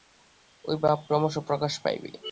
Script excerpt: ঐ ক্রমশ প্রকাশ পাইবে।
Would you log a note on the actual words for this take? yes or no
yes